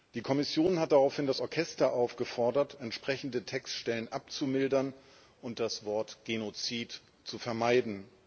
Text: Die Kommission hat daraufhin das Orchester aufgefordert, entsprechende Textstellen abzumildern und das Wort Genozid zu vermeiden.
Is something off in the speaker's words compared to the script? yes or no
no